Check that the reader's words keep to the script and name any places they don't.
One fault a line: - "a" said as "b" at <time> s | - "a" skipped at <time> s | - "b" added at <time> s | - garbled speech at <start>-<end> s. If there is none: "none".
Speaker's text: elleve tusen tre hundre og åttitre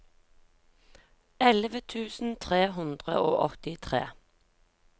none